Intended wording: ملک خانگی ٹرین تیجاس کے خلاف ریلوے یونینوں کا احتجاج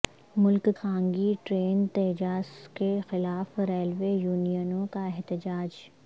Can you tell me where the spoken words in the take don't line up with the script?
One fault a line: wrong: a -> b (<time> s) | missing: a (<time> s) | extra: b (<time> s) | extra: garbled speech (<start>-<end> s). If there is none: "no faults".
no faults